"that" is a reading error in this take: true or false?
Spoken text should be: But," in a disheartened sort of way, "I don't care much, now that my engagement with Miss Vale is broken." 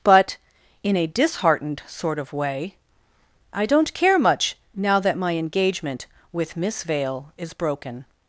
false